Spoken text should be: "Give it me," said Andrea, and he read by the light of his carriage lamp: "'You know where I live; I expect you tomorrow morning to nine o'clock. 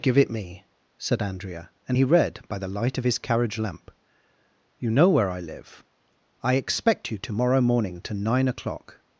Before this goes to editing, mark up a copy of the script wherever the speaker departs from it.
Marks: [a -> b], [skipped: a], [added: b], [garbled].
"Give it me," said Andrea, and he read by the light of his carriage lamp: "'You know where I live; I expect you tomorrow morning to nine o'clock.